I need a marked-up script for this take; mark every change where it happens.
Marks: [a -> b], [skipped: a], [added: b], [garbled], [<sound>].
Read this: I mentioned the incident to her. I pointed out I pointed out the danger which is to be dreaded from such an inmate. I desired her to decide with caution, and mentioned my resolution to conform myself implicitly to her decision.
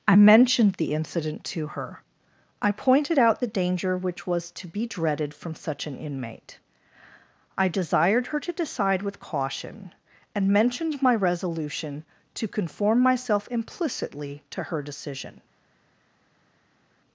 I mentioned the incident to her. I pointed out [skipped: I pointed out] the danger which [is -> was] to be dreaded from such an inmate. I desired her to decide with caution, and mentioned my resolution to conform myself implicitly to her decision.